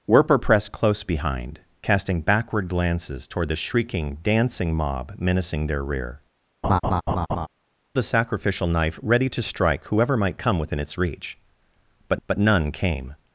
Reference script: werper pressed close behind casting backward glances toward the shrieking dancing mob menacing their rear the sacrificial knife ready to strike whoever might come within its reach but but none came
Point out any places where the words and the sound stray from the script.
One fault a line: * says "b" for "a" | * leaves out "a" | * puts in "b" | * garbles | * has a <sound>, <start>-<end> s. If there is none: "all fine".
* has a laugh, 6.6-7.5 s